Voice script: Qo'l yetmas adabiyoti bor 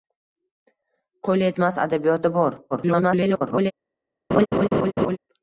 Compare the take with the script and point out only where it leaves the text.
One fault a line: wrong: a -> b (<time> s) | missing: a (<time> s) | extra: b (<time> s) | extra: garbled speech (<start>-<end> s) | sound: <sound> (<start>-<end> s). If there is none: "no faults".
extra: garbled speech (2.7-3.7 s)
sound: laugh (4.3-5.2 s)